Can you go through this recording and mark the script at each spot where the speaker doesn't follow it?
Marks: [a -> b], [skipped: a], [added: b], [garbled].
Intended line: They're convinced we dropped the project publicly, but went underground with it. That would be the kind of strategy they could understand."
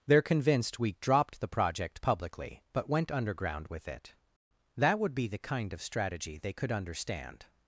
They're convinced we dropped the project publicly, but went underground with it. That would be the kind of strategy they could understand."